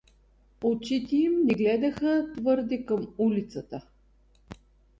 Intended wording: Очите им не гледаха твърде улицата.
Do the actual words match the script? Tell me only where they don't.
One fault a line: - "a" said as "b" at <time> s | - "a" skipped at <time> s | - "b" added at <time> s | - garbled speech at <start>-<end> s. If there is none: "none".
- "към" added at 2.9 s